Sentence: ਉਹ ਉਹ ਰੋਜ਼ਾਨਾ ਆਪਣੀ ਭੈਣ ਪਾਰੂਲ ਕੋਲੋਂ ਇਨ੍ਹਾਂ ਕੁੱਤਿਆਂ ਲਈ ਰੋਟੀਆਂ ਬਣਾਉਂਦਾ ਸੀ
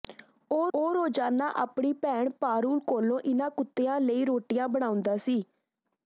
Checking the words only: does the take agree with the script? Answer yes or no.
yes